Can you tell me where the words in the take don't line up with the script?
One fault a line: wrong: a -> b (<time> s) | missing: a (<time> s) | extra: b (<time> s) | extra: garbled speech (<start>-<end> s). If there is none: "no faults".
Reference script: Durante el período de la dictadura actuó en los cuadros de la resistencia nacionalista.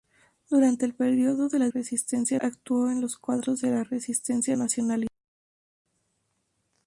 wrong: dictadura -> resistencia (1.7 s)